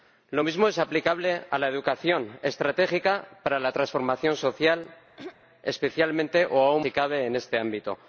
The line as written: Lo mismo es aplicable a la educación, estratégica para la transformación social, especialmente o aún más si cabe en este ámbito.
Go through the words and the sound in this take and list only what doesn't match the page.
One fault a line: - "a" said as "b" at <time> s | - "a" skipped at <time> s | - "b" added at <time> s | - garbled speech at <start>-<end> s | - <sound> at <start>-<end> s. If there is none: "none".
- throat clearing at 5.2-5.4 s
- "más" skipped at 6.8 s